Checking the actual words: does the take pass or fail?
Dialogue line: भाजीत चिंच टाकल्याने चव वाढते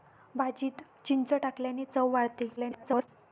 fail